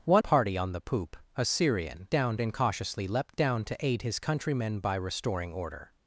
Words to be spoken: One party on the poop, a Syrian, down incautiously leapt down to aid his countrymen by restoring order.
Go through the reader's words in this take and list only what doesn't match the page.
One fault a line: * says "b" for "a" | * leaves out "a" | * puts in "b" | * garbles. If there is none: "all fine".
all fine